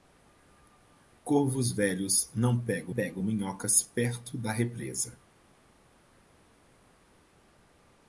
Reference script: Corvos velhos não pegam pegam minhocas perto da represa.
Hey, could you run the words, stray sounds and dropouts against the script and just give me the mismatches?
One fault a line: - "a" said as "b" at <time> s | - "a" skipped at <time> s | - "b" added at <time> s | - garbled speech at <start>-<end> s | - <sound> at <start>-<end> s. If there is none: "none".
none